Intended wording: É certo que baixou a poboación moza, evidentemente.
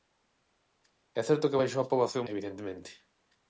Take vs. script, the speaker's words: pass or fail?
fail